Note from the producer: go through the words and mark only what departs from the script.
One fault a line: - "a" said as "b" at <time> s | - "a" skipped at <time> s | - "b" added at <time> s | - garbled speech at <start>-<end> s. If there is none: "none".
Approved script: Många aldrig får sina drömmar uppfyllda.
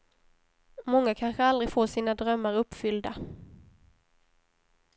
- "kanske" added at 1.1 s